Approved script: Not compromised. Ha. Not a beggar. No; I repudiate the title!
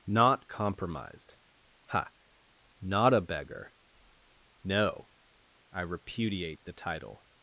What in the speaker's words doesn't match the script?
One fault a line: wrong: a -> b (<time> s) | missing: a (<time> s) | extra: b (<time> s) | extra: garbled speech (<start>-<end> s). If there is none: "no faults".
no faults